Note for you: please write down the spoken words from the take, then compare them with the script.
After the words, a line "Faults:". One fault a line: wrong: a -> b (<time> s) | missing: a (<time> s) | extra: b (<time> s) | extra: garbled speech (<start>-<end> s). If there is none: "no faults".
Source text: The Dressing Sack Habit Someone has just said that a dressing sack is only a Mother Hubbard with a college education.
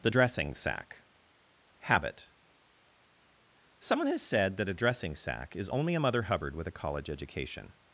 The Dressing Sack Habit Someone has said that a dressing sack is only a Mother Hubbard with a college education.
Faults:
missing: just (4.2 s)